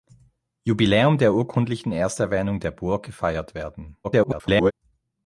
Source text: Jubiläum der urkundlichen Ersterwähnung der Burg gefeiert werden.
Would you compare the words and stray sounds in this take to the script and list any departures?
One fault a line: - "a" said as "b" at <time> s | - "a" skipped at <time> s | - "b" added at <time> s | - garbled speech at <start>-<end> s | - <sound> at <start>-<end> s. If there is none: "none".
- garbled speech at 4.0-4.7 s